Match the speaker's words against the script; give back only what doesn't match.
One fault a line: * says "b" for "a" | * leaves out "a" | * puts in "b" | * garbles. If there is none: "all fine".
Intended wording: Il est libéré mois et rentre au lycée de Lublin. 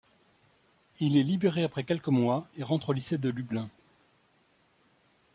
* puts in "après quelques"